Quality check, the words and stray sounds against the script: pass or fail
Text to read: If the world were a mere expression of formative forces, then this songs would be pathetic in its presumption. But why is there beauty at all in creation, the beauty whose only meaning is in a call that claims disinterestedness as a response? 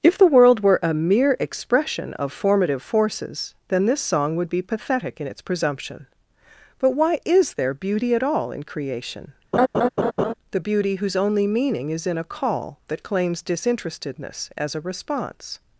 fail